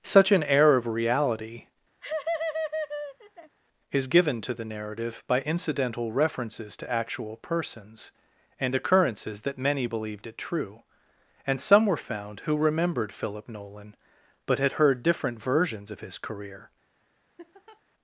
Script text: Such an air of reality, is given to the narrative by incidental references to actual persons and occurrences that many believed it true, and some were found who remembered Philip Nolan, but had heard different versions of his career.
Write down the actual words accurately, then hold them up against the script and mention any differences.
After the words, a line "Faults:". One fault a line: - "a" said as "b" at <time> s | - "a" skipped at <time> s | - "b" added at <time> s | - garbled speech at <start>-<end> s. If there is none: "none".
Such an air of reality, is given to the narrative by incidental references to actual persons and occurrences that many believed it true, and some were found who remembered Philip Nolan, but had heard different versions of his career.
Faults:
none